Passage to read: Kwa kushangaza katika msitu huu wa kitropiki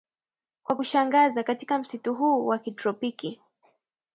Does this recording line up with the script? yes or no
yes